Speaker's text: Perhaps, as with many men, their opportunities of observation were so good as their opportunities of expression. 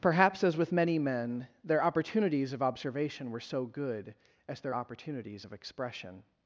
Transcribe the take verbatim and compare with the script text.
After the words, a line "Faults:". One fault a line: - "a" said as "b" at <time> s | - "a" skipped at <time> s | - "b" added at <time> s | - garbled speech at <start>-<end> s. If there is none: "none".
Perhaps, as with many men, their opportunities of observation were so good as their opportunities of expression.
Faults:
none